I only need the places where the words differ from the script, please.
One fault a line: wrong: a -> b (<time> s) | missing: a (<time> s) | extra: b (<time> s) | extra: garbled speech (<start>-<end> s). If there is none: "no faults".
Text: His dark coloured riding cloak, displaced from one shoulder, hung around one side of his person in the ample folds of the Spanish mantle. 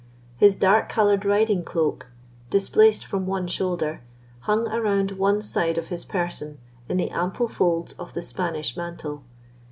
no faults